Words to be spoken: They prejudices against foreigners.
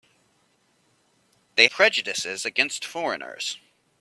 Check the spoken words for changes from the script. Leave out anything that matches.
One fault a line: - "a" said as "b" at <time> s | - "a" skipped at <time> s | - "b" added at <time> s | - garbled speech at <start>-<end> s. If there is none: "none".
none